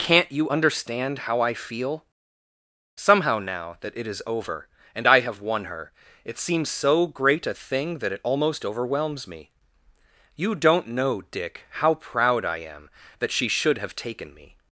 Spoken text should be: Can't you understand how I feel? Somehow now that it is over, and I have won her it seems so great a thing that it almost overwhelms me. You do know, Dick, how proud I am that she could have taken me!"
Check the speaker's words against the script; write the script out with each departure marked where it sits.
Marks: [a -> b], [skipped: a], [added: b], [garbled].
Can't you understand how I feel? Somehow now that it is over, and I have won her it seems so great a thing that it almost overwhelms me. You [do -> don't] know, Dick, how proud I am that she [could -> should] have taken me!"